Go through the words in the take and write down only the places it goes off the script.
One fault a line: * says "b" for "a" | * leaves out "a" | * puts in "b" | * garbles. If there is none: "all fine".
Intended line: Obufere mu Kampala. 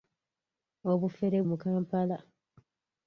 all fine